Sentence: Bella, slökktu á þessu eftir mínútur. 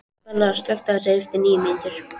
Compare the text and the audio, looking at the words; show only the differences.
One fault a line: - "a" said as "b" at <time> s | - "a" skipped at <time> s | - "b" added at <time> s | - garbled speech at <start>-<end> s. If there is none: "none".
- "níu" added at 1.5 s